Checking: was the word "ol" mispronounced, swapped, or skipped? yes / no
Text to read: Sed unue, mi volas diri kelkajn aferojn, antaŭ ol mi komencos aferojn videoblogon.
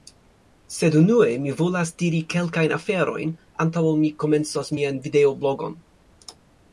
no